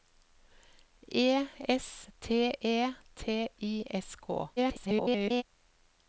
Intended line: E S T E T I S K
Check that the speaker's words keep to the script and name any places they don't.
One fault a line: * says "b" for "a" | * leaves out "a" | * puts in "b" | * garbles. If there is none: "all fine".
* garbles